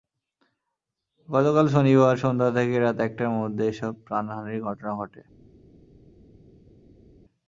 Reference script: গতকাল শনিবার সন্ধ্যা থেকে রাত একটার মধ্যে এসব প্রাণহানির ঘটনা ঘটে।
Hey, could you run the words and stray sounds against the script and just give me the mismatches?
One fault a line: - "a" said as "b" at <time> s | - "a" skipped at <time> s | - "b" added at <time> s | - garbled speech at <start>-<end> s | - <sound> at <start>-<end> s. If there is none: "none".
none